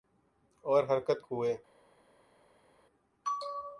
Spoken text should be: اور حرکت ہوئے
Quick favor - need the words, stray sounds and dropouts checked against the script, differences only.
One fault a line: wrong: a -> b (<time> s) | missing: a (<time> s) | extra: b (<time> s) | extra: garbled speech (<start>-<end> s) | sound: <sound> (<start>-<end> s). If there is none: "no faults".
no faults